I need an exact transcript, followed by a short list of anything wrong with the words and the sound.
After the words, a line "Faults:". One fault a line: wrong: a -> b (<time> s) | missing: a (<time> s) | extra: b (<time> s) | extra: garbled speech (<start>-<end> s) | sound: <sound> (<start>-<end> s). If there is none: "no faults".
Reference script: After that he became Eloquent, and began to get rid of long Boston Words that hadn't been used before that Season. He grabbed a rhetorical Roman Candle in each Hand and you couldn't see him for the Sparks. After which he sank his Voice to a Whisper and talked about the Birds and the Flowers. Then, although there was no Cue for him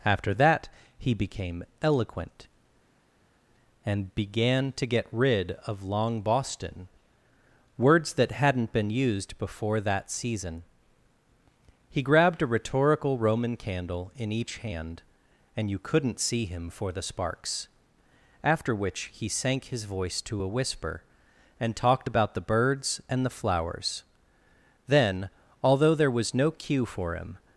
After that he became Eloquent, and began to get rid of long Boston Words that hadn't been used before that Season. He grabbed a rhetorical Roman Candle in each Hand and you couldn't see him for the Sparks. After which he sank his Voice to a Whisper and talked about the Birds and the Flowers. Then, although there was no Cue for him
Faults:
no faults